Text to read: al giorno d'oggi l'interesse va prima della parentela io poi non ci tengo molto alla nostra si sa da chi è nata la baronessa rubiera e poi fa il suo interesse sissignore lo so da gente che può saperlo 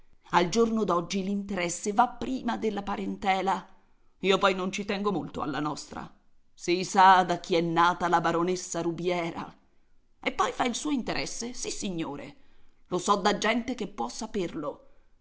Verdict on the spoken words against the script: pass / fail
pass